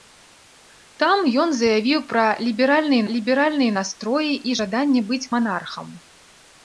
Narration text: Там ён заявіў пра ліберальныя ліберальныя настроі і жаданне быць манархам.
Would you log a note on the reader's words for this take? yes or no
no